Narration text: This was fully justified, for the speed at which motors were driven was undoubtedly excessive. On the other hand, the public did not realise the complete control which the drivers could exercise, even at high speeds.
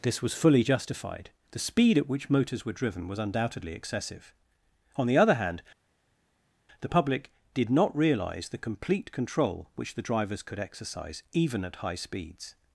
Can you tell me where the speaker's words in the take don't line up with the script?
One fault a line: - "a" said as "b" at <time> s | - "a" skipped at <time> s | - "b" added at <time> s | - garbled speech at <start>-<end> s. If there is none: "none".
- "for" skipped at 1.3 s